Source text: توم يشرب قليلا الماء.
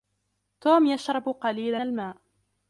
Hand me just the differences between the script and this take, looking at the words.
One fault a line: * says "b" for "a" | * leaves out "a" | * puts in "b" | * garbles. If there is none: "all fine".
all fine